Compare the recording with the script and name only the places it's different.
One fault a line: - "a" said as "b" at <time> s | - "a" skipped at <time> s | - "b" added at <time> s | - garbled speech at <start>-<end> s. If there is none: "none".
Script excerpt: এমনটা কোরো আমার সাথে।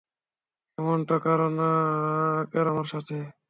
none